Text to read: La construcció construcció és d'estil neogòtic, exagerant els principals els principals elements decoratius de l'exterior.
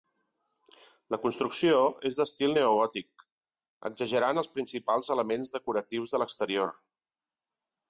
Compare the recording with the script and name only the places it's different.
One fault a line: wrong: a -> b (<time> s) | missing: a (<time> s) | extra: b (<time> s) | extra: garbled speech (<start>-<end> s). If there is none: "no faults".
missing: construcció (1.8 s)
missing: els principals (5.1 s)